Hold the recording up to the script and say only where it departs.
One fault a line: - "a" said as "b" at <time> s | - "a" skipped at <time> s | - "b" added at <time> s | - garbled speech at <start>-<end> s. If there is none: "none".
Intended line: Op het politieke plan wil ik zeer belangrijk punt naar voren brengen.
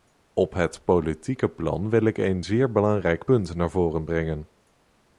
- "een" added at 2.2 s